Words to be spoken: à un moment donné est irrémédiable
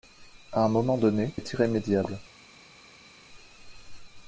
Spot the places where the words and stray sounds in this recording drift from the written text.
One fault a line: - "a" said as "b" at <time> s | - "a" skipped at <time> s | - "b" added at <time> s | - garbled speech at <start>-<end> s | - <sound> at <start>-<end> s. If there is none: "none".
none